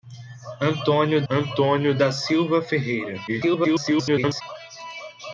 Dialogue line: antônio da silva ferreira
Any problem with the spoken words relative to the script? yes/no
yes